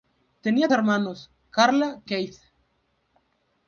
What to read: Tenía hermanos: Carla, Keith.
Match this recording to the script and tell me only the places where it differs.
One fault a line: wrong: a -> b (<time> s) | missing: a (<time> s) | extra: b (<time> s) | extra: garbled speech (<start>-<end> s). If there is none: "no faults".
no faults